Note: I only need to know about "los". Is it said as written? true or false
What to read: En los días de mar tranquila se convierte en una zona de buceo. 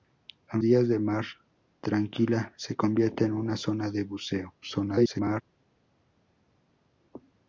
false